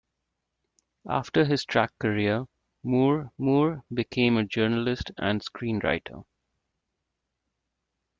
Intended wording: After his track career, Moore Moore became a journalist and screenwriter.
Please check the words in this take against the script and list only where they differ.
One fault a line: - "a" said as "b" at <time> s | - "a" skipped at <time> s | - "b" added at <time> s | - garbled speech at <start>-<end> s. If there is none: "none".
none